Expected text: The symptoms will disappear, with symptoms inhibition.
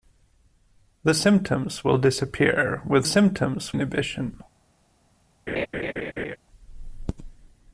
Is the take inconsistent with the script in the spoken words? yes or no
no